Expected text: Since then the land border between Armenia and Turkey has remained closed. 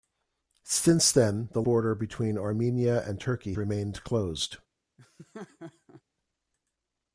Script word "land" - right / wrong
wrong